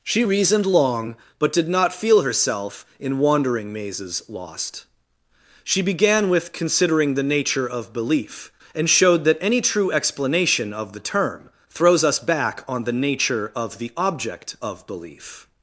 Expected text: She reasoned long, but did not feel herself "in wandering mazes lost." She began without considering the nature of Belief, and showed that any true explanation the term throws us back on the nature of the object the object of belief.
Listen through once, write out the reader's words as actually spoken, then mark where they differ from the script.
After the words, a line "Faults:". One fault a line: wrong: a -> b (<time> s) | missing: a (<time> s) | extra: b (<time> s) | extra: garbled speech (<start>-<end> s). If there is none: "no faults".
She reasoned long, but did not feel herself "in wandering mazes lost." She began with considering the nature of Belief, and showed that any true explanation of the term throws us back on the nature of the object of belief.
Faults:
wrong: without -> with (6.3 s)
extra: of (10.7 s)
missing: the object (14.5 s)